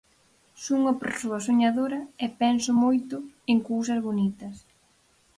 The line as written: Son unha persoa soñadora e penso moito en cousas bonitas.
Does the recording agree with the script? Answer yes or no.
yes